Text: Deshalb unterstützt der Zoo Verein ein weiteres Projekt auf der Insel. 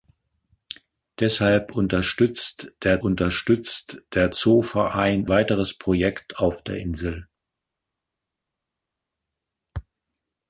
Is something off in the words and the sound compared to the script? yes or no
yes